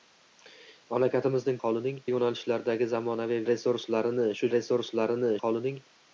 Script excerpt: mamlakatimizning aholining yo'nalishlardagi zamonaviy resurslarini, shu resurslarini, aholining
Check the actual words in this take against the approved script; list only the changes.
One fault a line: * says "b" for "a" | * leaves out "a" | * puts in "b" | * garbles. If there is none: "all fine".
all fine